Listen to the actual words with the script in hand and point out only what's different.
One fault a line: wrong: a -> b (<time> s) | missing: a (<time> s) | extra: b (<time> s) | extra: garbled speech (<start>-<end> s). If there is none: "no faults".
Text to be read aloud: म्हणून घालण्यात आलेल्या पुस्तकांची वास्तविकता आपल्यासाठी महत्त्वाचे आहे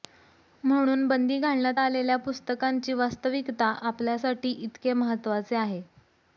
extra: बंदी (1.1 s)
extra: इतके (4.5 s)